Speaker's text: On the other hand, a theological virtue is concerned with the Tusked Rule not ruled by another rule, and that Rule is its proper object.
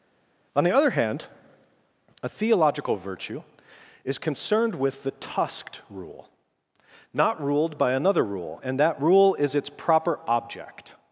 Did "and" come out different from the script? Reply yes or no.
no